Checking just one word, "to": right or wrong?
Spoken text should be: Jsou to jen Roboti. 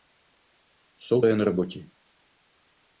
wrong